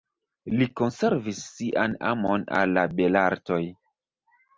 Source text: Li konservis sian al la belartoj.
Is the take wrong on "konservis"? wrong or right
right